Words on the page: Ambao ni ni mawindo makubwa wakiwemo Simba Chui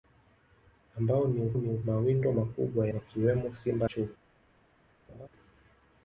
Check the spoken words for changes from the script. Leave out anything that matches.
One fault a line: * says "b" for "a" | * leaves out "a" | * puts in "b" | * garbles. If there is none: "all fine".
all fine